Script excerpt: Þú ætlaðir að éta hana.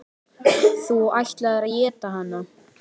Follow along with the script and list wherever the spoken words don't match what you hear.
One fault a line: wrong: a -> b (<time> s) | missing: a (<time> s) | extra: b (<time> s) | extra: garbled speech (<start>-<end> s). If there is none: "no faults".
no faults